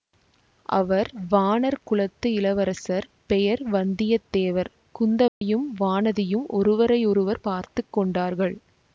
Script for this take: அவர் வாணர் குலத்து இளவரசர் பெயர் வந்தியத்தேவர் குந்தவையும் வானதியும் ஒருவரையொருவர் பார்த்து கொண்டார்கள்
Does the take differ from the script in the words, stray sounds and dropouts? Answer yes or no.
yes